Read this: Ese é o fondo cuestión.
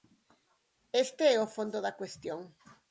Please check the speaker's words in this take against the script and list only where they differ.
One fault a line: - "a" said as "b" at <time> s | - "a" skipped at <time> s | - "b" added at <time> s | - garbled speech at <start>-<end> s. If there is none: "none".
- "Ese" said as "Este" at 1.0 s
- "da" added at 1.9 s